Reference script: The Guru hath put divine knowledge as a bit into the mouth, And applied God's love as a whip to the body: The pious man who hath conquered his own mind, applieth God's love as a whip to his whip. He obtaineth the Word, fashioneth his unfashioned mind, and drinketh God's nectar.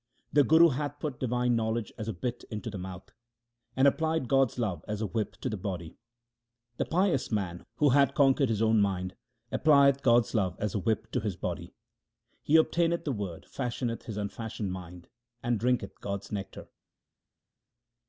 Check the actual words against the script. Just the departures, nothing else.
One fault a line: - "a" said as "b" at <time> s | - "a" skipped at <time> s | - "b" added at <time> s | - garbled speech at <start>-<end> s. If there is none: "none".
- "whip" said as "body" at 11.3 s